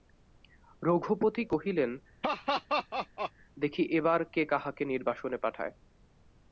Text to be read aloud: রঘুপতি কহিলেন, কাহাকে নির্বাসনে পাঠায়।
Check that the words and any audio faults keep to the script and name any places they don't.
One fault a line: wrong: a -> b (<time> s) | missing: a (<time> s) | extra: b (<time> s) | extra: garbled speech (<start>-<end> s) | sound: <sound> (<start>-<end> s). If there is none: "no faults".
sound: laugh (2.2-3.3 s)
extra: দেখি এবার কে (3.6 s)